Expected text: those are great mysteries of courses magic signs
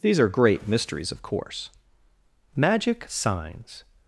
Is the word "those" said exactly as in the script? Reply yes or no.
no